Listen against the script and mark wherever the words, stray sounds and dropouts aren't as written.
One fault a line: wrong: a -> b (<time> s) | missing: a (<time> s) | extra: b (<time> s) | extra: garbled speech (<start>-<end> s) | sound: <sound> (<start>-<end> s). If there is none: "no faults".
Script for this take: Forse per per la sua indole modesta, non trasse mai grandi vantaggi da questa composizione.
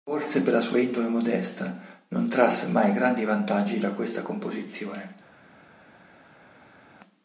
missing: per (0.5 s)